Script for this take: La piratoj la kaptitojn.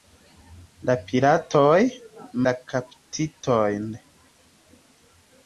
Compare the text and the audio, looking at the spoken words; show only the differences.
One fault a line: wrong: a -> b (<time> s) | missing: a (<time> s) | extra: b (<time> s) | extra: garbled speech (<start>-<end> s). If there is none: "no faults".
no faults